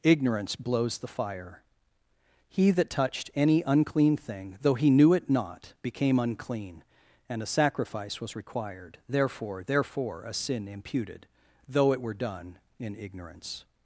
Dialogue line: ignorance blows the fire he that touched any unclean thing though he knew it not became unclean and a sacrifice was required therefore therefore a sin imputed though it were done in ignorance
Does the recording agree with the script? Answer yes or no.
yes